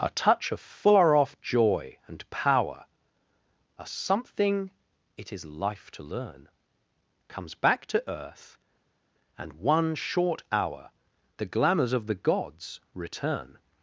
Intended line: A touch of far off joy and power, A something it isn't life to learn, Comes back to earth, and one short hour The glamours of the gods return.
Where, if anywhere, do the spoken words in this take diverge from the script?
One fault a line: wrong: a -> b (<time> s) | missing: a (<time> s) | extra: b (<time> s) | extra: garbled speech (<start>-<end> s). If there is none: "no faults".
wrong: isn't -> is (5.3 s)